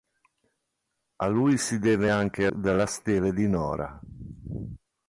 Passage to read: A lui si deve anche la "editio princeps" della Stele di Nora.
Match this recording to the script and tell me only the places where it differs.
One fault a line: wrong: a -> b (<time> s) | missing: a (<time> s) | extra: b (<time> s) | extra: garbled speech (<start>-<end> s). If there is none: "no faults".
missing: la editio princeps (2.5 s)